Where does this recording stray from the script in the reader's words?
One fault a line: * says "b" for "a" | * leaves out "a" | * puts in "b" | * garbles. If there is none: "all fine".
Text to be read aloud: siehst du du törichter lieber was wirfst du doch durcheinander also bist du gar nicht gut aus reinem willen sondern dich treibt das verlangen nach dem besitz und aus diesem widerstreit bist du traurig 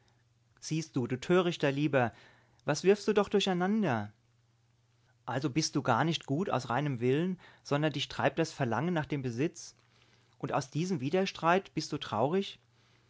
all fine